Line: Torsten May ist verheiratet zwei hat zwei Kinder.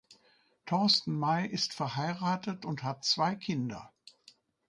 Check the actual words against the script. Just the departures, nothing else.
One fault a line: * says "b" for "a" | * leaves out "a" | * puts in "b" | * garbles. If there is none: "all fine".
* says "und" for "zwei"